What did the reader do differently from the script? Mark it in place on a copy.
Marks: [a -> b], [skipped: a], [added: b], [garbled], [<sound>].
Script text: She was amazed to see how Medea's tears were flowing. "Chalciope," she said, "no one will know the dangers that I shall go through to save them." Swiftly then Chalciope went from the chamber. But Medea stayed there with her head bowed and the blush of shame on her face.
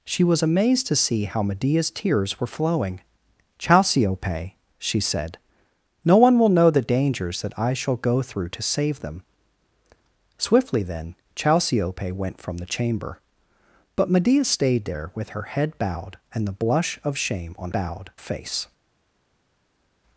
She was amazed to see how Medea's tears were flowing. "Chalciope," she said, "no one will know the dangers that I shall go through to save them." Swiftly then Chalciope went from the chamber. But Medea stayed there with her head bowed and the blush of shame on [her -> bowed] face.